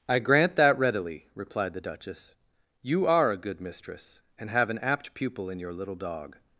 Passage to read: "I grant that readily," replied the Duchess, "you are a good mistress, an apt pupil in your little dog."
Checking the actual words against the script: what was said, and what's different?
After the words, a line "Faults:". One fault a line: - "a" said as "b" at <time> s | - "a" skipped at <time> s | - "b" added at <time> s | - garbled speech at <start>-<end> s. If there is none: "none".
"I grant that readily," replied the Duchess, "you are a good mistress, and have an apt pupil in your little dog."
Faults:
- "and have" added at 4.4 s